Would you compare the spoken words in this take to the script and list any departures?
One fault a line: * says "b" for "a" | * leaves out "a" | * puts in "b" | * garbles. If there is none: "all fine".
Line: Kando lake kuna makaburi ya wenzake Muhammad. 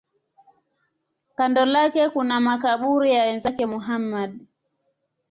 all fine